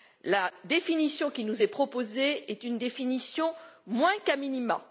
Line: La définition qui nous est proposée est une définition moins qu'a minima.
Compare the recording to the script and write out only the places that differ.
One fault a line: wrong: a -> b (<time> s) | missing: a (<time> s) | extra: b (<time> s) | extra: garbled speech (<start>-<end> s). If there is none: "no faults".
no faults